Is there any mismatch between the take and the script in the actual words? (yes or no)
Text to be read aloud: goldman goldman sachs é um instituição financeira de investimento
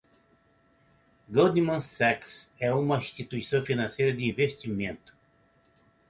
yes